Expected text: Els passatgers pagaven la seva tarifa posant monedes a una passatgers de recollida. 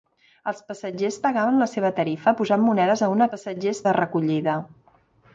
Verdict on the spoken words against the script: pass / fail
pass